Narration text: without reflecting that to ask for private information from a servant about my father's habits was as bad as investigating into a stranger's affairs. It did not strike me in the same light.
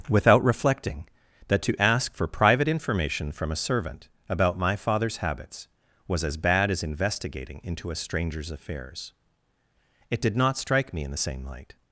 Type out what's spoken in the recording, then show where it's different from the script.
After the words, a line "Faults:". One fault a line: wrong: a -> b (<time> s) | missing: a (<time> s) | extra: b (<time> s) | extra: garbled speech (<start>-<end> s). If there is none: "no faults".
without reflecting that to ask for private information from a servant about my father's habits was as bad as investigating into a stranger's affairs. It did not strike me in the same light.
Faults:
no faults